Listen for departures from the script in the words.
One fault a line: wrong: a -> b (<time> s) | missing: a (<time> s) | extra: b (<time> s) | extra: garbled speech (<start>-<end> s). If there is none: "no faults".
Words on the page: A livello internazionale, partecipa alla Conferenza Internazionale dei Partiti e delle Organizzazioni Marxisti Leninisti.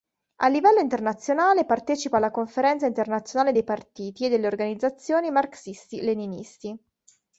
no faults